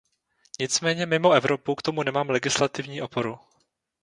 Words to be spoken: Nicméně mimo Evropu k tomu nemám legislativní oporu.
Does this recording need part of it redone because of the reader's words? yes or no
no